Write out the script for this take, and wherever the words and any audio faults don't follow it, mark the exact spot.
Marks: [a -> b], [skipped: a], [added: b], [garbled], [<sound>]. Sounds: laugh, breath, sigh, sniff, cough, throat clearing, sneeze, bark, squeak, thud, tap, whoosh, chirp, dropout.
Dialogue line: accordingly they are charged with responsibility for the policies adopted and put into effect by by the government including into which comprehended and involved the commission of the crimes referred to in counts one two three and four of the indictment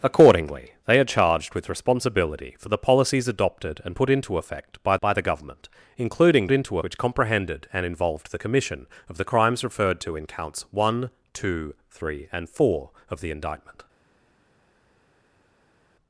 accordingly they are charged with responsibility for the policies adopted and put into effect by by the government including into which comprehended and involved the commission of the crimes referred to in counts one two three and four of the indictment